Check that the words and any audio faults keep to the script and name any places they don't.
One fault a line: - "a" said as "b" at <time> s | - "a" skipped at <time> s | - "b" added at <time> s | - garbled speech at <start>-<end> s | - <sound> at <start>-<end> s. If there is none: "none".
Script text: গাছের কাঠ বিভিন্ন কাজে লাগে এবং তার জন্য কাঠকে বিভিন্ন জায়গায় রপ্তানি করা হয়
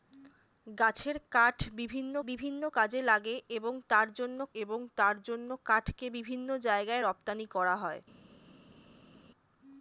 - "বিভিন্ন" added at 2.3 s
- "এবং তার জন্য" added at 4.5 s